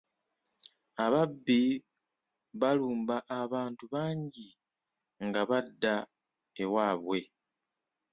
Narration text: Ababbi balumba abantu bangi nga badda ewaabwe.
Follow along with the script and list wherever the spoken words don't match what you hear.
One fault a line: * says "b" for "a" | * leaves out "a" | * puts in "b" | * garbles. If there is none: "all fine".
all fine